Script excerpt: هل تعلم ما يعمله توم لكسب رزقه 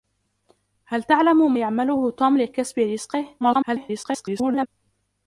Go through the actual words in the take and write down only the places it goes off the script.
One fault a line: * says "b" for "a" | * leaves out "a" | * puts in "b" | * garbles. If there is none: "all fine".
* leaves out "ما"
* garbles